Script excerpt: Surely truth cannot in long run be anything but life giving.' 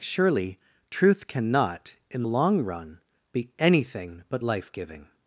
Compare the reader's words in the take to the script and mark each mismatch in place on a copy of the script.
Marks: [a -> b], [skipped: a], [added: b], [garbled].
Surely truth cannot in long run be anything but life giving.'